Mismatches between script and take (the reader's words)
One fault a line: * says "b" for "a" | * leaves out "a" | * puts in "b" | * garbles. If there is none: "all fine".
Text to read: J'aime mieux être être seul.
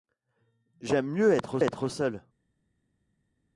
all fine